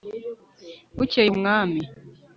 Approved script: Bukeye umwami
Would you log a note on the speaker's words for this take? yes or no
no